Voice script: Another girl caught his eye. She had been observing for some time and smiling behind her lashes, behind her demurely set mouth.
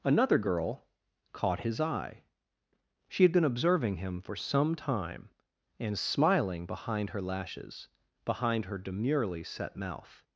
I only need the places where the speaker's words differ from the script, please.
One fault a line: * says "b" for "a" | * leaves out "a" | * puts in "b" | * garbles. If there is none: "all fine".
* puts in "him"